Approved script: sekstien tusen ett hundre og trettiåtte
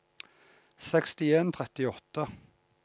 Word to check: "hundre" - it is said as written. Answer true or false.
false